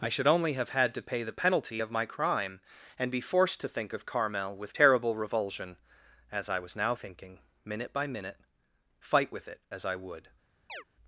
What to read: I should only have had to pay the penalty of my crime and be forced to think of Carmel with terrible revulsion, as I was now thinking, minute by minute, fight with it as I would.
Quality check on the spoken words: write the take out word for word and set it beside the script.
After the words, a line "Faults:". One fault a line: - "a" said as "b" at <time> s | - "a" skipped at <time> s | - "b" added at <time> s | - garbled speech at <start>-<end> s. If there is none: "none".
I should only have had to pay the penalty of my crime and be forced to think of Carmel with terrible revulsion, as I was now thinking, minute by minute, fight with it as I would.
Faults:
none